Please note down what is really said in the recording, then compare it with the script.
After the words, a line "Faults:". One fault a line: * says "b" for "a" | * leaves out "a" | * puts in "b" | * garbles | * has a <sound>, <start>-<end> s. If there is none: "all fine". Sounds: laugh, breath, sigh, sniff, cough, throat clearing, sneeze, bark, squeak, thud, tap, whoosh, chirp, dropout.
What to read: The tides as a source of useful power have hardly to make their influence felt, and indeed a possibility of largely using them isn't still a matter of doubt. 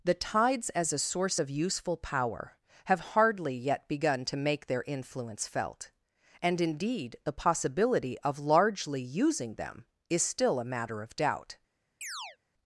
The tides as a source of useful power have hardly yet begun to make their influence felt, and indeed the possibility of largely using them is still a matter of doubt.
Faults:
* puts in "yet begun"
* says "the" for "a"
* says "is" for "isn't"
* has a chirp, 12.0-12.4 s